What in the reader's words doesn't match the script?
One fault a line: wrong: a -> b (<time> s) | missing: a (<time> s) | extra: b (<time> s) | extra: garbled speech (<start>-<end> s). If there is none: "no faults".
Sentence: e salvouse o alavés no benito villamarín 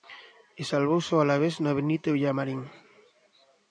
no faults